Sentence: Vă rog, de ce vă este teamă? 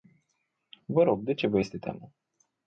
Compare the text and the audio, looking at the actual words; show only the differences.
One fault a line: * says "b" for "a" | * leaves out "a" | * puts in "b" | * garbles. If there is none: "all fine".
all fine